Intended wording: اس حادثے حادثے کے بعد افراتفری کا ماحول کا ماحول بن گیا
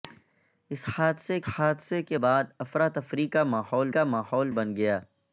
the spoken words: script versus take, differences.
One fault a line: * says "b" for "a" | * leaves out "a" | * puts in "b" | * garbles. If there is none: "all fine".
all fine